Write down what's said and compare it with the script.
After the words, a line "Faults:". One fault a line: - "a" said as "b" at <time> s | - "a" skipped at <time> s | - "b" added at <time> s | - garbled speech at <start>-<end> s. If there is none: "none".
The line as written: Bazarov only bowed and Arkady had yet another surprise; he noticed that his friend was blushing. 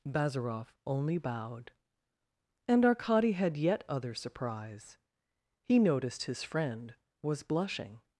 Bazarov only bowed and Arkady had yet other surprise; he noticed his friend was blushing.
Faults:
- "another" said as "other" at 3.9 s
- "that" skipped at 6.2 s